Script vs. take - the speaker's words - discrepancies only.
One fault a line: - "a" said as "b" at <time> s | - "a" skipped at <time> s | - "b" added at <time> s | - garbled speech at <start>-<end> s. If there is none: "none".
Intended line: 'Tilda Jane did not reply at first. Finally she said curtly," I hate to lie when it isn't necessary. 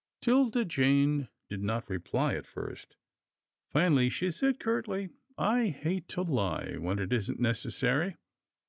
none